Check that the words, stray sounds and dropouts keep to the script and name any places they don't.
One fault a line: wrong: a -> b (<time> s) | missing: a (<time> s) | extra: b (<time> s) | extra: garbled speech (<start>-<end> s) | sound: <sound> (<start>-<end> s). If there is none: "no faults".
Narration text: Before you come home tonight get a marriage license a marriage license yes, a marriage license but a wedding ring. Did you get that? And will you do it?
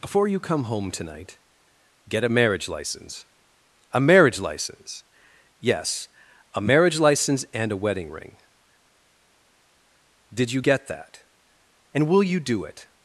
wrong: but -> and (7.5 s)